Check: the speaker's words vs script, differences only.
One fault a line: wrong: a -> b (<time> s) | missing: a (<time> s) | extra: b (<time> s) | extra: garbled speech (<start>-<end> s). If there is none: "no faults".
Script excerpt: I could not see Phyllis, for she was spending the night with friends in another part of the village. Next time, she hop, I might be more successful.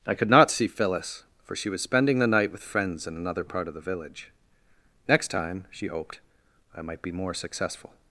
wrong: hop -> hoped (5.9 s)